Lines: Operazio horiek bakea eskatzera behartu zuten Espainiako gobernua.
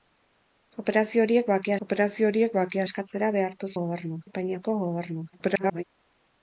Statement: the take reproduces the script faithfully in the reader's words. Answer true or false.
false